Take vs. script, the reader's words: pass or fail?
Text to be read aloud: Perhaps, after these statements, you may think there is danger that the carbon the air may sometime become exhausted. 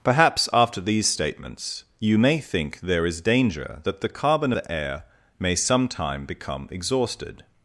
pass